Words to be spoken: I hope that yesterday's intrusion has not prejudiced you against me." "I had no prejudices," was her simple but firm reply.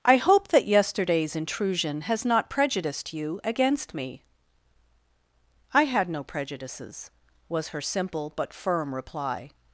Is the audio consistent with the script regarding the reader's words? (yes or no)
yes